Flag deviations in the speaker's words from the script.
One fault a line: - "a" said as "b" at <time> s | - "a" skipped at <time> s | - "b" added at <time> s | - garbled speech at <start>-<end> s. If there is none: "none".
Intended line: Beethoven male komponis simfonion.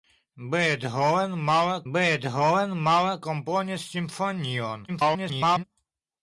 - "beethoven male" added at 1.9 s
- garbled speech at 4.9-5.6 s